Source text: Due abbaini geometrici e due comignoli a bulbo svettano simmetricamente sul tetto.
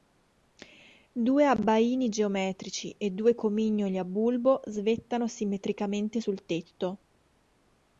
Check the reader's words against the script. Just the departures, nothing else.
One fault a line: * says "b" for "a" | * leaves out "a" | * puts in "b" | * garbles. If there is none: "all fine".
all fine